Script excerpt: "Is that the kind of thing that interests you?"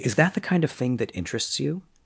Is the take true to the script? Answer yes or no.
yes